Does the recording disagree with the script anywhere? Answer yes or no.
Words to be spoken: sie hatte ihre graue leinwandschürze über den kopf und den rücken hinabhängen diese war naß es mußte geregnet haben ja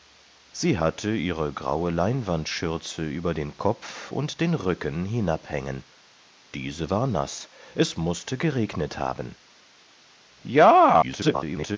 yes